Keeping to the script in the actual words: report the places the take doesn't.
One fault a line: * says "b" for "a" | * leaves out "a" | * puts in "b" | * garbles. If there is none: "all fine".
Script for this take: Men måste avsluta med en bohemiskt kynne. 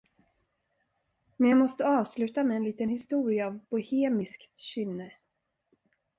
* puts in "jag"
* puts in "liten historia av"